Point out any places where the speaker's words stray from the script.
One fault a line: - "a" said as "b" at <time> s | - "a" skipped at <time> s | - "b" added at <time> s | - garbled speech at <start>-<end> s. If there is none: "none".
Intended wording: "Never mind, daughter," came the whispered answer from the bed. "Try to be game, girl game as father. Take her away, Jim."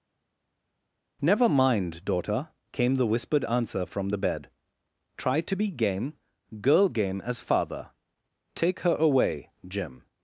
none